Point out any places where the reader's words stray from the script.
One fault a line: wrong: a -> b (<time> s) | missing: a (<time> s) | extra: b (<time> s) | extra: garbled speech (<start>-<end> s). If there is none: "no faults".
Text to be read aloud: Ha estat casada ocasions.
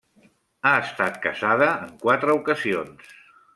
extra: en quatre (1.9 s)